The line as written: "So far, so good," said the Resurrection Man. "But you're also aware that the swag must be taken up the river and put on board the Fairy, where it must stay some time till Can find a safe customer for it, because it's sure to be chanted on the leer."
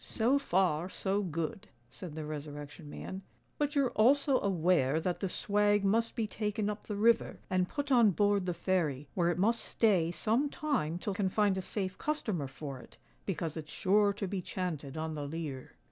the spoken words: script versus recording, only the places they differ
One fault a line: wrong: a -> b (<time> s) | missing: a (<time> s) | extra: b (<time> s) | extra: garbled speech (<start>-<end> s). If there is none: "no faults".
no faults